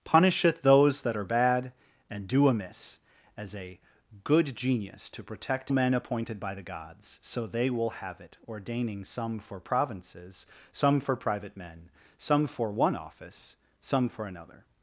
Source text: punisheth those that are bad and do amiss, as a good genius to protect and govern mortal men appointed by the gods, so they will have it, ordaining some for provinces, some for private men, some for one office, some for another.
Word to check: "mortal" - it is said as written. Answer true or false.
false